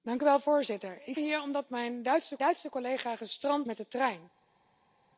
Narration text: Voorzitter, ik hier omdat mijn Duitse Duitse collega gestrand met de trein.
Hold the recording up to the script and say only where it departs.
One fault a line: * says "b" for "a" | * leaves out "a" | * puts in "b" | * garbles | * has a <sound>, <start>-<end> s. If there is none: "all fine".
all fine